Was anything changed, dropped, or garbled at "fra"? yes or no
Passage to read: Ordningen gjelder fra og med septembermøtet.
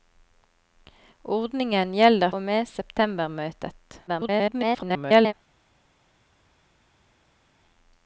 yes